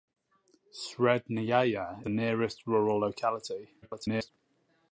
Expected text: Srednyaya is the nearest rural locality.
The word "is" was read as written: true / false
false